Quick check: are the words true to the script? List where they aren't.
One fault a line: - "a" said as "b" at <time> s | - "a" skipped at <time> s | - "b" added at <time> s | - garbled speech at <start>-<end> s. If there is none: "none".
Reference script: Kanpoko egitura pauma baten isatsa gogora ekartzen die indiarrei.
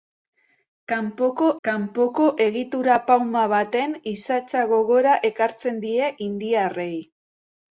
- "kanpoko" added at 1.7 s